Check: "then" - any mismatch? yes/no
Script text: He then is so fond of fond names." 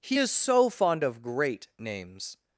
yes